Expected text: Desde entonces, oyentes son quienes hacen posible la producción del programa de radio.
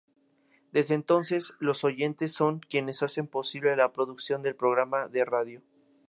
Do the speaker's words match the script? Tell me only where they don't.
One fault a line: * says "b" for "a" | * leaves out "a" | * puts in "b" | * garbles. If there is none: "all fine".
* puts in "los"